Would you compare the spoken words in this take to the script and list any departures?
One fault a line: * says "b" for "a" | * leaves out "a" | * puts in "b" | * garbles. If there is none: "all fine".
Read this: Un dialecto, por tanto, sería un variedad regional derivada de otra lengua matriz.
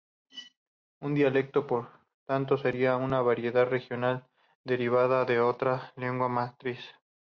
* says "una" for "un"